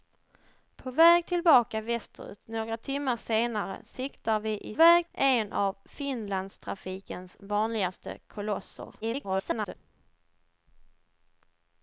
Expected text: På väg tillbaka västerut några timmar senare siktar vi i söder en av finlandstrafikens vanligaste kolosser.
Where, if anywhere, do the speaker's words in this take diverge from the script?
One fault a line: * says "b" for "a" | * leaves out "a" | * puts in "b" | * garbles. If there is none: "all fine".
* says "väg" for "söder"
* garbles